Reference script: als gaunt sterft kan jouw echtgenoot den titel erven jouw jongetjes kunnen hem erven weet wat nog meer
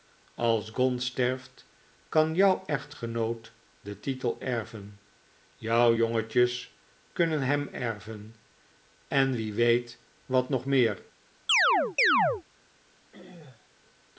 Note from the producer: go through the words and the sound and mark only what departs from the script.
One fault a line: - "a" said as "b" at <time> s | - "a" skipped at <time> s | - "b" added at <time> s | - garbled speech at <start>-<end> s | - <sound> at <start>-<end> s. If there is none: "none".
- "en wie" added at 9.1 s
- chirp at 11.5-12.4 s
- throat clearing at 13.1-13.7 s